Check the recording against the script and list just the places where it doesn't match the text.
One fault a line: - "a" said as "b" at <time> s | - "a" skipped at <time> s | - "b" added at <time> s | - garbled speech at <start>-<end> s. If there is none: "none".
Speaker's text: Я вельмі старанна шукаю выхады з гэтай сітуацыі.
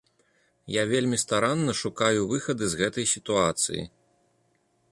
none